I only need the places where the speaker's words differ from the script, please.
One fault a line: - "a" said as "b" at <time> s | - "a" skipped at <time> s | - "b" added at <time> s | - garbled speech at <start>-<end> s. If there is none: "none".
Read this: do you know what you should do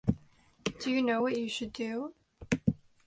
none